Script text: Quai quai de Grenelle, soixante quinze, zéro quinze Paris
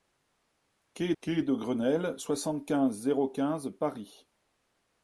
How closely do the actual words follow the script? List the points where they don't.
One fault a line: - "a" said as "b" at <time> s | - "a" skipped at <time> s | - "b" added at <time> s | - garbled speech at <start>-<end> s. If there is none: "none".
none